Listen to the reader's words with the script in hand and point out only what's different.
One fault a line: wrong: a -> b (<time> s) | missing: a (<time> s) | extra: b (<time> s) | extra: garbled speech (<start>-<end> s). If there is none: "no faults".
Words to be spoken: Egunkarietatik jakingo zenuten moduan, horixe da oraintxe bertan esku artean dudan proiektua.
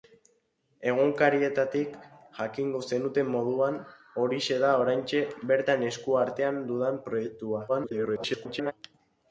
extra: garbled speech (7.7-8.7 s)